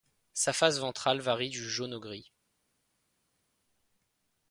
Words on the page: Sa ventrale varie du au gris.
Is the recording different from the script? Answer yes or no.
yes